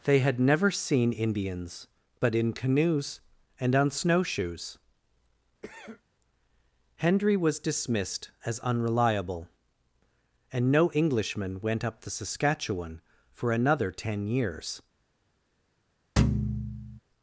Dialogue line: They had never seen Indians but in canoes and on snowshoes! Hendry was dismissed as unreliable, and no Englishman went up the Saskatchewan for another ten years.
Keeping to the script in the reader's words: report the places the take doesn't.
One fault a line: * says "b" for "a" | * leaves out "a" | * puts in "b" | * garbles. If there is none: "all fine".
all fine